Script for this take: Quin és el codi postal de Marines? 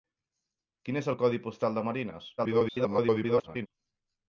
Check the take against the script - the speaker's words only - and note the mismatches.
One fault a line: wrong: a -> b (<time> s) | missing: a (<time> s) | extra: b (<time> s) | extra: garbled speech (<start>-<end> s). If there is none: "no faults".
extra: garbled speech (2.4-3.7 s)